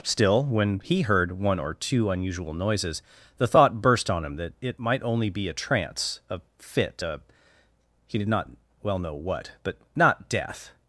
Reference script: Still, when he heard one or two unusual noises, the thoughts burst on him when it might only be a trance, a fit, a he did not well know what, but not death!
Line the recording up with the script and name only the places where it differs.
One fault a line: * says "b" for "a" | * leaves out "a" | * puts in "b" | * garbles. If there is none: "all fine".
* says "thought" for "thoughts"
* says "that" for "when"